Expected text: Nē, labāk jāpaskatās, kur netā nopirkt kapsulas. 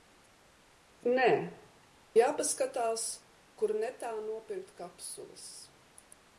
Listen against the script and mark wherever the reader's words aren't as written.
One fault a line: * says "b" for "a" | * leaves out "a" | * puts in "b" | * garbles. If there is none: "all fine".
* leaves out "labāk"